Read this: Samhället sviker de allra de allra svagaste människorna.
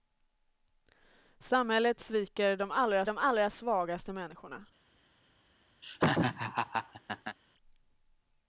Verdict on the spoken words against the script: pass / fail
pass